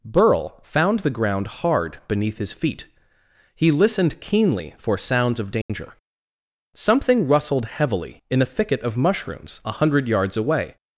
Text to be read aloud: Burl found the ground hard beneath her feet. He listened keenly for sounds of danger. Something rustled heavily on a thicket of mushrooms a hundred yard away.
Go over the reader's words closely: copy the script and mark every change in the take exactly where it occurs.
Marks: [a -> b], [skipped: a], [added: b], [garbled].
Burl found the ground hard beneath [her -> his] feet. He listened keenly for sounds of danger. Something rustled heavily [on -> in] a thicket of mushrooms a hundred [yard -> yards] away.